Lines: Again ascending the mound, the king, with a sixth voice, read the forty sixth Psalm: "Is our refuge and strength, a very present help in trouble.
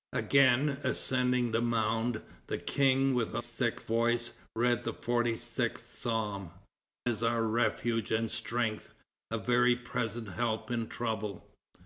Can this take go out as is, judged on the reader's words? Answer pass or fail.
pass